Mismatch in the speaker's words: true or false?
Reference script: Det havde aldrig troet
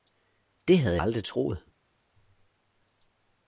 false